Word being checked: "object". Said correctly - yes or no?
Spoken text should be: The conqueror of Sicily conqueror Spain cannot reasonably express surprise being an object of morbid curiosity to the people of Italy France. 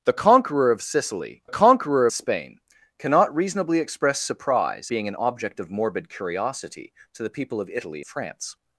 yes